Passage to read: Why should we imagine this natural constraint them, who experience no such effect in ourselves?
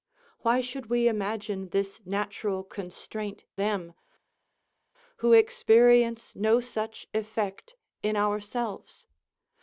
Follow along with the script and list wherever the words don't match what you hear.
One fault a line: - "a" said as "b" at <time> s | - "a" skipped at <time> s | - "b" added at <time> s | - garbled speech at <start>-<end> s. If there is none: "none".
none